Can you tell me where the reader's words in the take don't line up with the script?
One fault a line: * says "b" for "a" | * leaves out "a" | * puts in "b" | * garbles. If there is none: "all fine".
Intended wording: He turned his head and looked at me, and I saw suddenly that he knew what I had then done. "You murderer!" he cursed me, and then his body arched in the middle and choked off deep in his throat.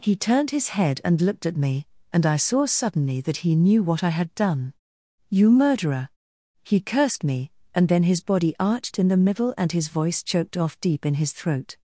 * leaves out "then"
* puts in "his voice"